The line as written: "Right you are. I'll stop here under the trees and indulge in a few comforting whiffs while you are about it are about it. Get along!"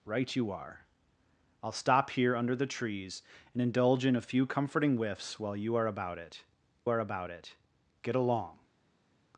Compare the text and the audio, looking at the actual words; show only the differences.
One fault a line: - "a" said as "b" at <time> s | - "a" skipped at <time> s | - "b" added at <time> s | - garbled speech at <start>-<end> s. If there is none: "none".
none